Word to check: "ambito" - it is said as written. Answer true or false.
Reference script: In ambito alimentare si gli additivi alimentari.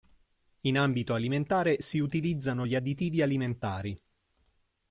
true